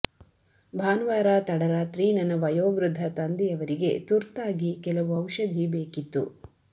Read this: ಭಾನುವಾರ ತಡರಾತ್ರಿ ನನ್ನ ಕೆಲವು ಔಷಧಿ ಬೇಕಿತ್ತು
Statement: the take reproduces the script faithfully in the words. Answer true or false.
false